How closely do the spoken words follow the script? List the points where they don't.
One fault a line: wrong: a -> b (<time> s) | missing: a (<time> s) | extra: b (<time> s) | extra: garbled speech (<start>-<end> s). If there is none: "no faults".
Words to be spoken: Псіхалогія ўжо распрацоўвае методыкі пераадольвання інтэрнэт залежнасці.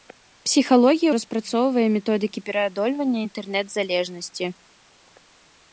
missing: ўжо (1.1 s)